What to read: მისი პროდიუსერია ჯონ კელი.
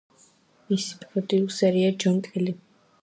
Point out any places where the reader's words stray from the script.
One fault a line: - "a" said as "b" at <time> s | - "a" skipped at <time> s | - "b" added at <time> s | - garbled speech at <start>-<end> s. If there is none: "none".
none